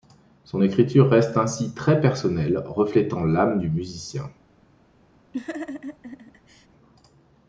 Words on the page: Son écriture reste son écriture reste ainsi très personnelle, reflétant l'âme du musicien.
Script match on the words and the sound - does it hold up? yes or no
no